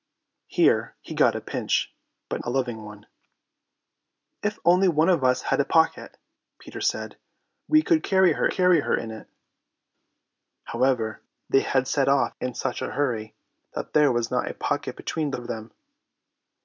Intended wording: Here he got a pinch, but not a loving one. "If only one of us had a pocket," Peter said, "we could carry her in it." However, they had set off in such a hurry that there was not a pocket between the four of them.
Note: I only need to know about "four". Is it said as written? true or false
false